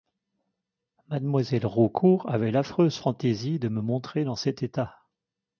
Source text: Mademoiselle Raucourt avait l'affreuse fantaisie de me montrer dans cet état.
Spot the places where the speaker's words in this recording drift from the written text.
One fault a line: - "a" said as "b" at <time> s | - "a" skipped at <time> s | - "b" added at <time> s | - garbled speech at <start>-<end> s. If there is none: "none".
none